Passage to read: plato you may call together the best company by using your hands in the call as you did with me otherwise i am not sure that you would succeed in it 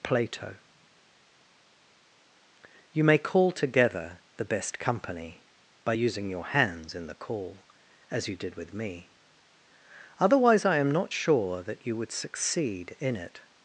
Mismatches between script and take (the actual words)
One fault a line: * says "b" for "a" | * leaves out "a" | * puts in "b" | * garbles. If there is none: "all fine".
all fine